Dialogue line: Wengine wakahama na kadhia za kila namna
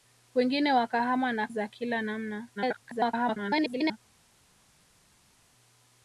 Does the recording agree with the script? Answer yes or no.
no